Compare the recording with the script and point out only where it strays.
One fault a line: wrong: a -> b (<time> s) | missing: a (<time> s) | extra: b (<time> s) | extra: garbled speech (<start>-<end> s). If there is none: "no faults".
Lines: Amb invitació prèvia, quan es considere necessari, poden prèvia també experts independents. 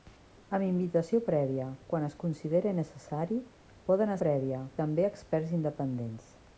no faults